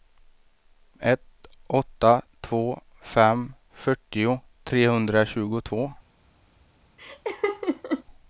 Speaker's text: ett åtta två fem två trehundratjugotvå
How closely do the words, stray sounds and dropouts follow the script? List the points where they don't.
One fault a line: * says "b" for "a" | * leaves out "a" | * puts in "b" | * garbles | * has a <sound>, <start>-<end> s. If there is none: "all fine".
* says "fyrtio" for "två"
* has a laugh, 7.0-8.0 s